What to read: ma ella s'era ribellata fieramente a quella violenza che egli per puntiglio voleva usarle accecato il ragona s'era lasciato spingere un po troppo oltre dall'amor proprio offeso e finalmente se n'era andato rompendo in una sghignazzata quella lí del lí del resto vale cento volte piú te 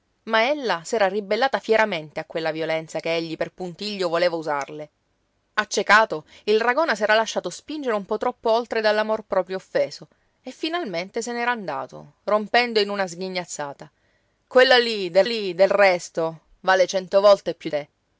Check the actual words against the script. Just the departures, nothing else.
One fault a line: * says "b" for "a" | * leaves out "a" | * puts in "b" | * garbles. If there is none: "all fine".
all fine